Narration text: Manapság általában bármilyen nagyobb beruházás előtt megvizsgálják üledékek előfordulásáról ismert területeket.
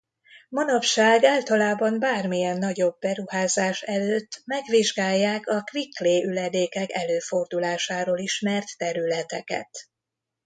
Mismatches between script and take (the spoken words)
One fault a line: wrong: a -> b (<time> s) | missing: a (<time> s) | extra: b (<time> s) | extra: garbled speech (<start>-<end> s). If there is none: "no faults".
extra: a quick clay (5.5 s)